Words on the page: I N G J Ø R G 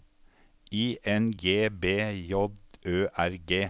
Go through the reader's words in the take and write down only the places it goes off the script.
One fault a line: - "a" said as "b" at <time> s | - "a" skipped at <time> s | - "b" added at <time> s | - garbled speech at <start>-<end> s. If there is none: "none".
- "B" added at 1.7 s